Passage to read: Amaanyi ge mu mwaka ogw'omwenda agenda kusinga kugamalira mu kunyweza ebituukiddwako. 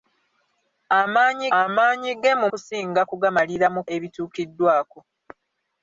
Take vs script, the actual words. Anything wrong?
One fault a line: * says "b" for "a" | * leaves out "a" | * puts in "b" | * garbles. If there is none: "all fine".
* puts in "amaanyi"
* leaves out "mwaka ogw'omwenda agenda"
* leaves out "kunyweza"